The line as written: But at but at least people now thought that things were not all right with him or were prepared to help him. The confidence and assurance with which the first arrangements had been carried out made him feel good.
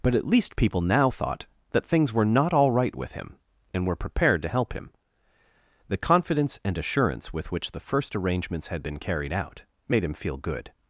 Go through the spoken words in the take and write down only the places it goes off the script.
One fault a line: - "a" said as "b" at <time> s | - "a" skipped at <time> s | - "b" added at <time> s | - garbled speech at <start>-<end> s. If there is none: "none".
- "but at" skipped at 0.3 s
- "or" said as "and" at 3.7 s